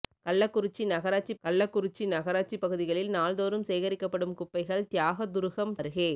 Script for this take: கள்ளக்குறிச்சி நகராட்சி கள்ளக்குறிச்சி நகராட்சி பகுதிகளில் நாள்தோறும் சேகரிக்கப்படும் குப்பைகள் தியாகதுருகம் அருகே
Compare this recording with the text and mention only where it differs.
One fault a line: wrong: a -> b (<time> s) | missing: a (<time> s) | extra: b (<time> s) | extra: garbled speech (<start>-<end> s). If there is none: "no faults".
no faults